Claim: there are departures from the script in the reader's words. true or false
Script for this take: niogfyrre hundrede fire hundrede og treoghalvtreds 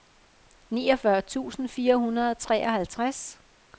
true